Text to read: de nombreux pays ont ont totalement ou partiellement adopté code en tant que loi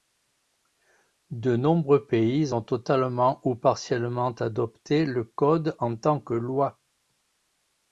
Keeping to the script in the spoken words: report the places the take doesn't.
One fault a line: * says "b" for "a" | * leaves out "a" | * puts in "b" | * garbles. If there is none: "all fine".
* leaves out "ont"
* puts in "le"